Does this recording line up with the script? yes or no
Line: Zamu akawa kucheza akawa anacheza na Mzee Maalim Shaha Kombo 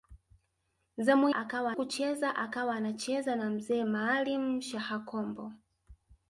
yes